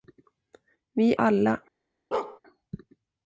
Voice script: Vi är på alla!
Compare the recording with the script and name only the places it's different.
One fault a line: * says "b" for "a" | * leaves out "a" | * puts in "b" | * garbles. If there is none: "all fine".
* leaves out "är på"